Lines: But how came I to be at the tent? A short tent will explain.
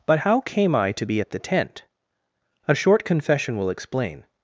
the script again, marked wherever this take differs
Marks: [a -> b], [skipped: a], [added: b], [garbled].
But how came I to be at the tent? A short [tent -> confession] will explain.